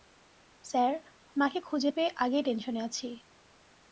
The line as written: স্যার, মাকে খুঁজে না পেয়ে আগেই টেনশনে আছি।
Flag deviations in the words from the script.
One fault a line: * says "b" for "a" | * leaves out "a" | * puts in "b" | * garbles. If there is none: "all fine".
* leaves out "না"